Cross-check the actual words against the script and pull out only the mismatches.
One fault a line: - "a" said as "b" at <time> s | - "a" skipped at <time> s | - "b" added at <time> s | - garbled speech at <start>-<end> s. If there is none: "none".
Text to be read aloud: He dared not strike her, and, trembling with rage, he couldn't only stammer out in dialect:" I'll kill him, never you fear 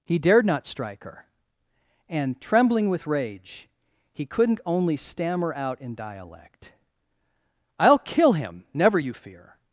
none